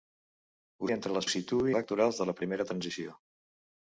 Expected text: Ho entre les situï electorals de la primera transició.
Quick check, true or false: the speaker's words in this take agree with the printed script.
true